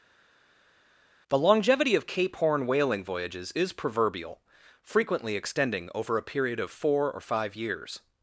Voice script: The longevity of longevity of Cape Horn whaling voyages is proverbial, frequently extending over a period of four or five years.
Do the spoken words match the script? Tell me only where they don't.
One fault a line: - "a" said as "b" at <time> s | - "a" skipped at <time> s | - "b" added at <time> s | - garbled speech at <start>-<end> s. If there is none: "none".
- "longevity of" skipped at 2.1 s